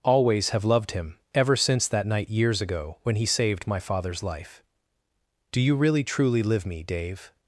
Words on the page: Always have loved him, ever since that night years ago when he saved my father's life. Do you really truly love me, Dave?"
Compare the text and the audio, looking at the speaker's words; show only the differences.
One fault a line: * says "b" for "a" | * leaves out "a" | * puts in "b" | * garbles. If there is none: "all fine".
* says "live" for "love"